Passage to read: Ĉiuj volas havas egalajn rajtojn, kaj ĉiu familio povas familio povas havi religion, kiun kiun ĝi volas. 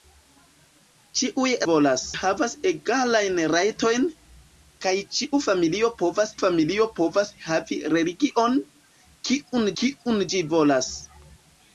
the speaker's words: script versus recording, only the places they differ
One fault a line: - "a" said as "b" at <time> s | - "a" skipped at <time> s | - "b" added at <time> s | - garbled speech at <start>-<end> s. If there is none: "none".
none